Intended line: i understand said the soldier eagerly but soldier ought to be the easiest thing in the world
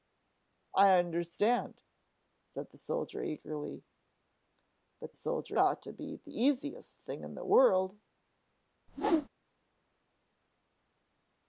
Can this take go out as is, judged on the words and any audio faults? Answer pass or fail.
fail